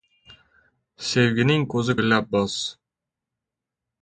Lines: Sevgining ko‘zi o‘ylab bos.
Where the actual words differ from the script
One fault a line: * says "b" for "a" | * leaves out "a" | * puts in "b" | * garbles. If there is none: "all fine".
all fine